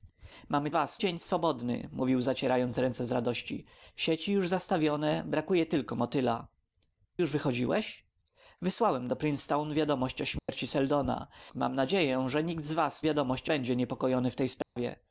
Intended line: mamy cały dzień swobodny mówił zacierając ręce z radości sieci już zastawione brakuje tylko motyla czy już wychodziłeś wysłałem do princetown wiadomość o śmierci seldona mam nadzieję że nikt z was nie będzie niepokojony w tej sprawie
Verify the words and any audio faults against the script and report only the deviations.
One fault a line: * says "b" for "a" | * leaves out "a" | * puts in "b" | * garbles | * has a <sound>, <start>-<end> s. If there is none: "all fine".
* says "was" for "cały"
* leaves out "czy"
* has a dropout, 10.4-10.5 s
* says "wiadomość" for "nie"
* has a dropout, 14.6-14.8 s